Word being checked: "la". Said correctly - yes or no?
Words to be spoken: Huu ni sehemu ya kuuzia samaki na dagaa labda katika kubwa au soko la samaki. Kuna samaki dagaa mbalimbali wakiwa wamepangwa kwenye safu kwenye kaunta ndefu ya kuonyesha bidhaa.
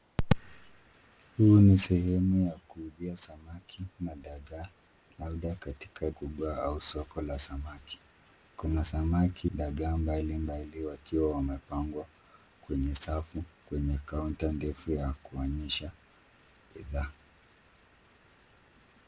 yes